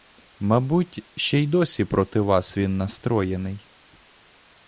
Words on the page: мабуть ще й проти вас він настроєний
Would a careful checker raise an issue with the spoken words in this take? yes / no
yes